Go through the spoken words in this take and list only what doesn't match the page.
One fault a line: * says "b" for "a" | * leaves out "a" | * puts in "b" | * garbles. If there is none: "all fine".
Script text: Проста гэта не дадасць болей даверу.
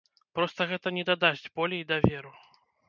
all fine